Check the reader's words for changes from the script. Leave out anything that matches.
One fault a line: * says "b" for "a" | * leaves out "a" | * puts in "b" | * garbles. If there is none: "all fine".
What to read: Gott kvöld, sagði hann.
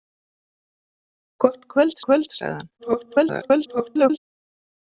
* puts in "kvöld"
* garbles